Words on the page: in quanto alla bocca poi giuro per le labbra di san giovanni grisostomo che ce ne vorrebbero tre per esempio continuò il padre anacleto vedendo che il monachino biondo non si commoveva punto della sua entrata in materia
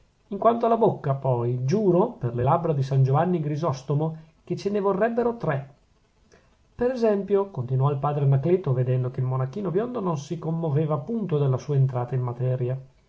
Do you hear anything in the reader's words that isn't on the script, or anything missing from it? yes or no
no